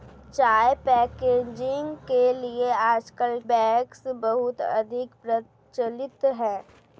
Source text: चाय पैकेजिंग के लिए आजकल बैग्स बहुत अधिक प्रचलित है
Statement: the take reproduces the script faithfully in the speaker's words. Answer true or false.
true